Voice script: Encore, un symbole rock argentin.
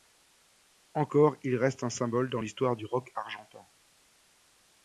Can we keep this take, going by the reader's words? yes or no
no